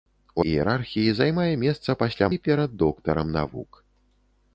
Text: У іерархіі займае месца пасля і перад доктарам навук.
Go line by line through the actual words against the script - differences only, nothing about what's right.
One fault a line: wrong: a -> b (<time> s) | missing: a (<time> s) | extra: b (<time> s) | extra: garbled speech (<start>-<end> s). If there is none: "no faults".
no faults